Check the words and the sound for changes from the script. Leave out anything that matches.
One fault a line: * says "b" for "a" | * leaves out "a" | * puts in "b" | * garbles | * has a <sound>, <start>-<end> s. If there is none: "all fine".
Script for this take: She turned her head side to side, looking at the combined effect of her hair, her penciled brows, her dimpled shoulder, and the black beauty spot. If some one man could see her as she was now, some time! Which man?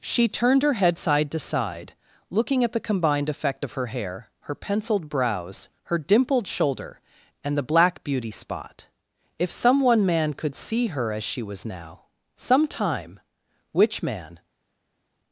all fine